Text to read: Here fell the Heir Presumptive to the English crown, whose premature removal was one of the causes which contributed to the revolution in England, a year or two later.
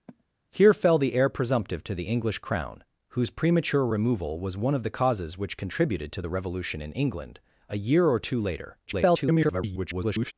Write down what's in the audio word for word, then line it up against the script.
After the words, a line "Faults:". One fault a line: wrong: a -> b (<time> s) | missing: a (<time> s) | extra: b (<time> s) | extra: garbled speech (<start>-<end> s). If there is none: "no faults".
Here fell the Heir Presumptive to the English crown, whose premature removal was one of the causes which contributed to the revolution in England, a year or two later. [garbled]
Faults:
extra: garbled speech (8.9-10.3 s)